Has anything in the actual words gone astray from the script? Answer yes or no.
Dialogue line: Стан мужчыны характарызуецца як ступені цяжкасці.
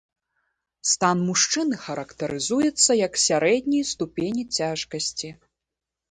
yes